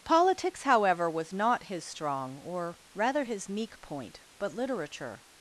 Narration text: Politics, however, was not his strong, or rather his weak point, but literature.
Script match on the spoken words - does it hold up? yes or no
no